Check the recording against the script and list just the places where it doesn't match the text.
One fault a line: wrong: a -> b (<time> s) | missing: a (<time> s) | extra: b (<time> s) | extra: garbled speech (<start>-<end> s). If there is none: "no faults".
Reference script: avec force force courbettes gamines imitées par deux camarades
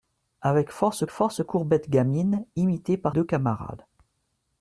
no faults